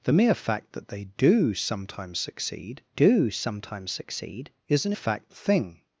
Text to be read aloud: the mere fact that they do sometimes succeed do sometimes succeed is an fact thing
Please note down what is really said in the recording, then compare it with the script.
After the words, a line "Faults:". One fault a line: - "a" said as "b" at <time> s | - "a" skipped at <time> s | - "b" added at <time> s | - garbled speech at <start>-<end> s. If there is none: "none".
the mere fact that they do sometimes succeed do sometimes succeed is an fact thing
Faults:
none